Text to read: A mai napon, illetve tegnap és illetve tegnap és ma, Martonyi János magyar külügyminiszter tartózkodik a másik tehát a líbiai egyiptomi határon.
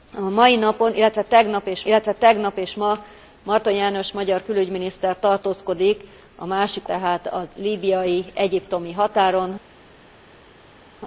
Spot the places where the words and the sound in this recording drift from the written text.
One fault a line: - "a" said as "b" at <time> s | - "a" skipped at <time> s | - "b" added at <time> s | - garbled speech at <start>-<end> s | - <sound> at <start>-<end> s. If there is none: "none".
none